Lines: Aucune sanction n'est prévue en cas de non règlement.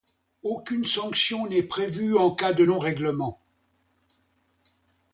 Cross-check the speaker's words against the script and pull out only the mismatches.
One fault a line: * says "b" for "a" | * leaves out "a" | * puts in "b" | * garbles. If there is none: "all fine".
all fine